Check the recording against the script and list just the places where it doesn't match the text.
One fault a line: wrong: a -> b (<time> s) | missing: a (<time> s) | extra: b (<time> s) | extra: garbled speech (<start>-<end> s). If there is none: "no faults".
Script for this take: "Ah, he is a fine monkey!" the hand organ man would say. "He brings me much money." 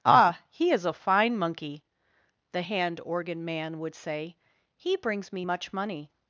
no faults